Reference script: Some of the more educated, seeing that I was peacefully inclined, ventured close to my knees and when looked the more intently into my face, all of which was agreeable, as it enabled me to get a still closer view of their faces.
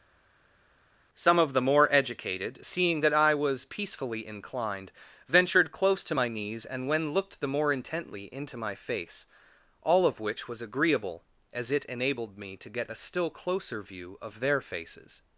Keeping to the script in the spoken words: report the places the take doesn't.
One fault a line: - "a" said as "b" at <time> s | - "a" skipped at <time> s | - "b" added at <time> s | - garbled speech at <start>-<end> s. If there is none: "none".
none